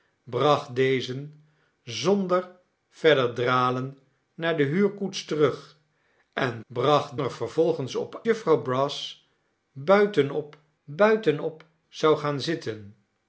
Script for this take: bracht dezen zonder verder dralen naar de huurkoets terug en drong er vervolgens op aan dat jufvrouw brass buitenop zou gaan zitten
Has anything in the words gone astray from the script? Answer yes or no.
yes